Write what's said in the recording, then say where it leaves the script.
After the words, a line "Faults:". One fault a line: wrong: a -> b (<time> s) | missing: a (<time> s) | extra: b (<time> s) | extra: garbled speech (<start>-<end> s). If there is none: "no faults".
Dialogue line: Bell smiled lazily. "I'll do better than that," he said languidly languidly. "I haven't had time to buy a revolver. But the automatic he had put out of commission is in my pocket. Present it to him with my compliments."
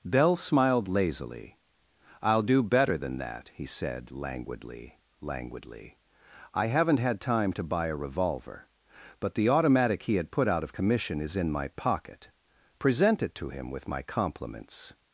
Bell smiled lazily. "I'll do better than that," he said languidly languidly. "I haven't had time to buy a revolver. But the automatic he had put out of commission is in my pocket. Present it to him with my compliments."
Faults:
no faults